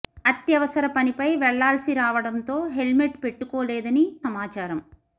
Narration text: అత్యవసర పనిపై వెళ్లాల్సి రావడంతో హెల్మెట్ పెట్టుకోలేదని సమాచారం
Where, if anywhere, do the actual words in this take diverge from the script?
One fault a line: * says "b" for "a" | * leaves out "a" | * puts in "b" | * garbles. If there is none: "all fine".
all fine